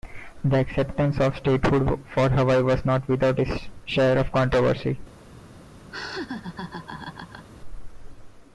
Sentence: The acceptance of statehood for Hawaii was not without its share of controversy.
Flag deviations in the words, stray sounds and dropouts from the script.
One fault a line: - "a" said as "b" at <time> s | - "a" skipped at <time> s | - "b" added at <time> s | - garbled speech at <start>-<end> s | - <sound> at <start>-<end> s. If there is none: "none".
- laugh at 5.9-7.5 s